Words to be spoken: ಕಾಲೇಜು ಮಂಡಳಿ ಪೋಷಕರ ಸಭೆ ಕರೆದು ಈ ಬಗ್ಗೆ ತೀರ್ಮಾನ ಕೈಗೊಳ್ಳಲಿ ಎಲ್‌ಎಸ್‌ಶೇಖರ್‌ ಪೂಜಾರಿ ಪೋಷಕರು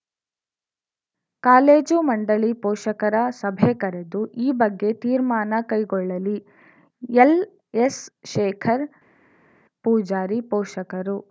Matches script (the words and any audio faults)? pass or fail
pass